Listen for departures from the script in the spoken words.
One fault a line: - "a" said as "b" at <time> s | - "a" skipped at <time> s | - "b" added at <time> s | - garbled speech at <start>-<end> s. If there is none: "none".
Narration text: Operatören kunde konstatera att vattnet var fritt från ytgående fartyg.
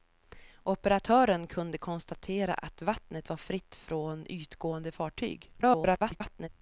- garbled speech at 5.6-6.5 s